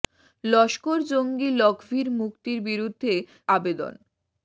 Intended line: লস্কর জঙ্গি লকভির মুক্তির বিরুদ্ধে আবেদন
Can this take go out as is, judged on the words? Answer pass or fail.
pass